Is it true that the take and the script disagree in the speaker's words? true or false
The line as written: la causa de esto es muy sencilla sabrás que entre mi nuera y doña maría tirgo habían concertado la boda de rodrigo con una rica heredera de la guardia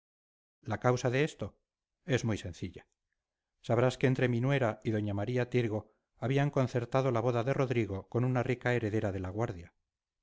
false